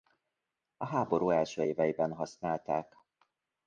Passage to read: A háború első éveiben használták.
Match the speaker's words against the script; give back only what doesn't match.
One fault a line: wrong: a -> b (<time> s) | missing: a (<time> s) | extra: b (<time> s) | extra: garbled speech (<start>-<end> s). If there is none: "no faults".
no faults